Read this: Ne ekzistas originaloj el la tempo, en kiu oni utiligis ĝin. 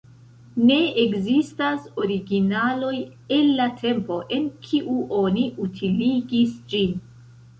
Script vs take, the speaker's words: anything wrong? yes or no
no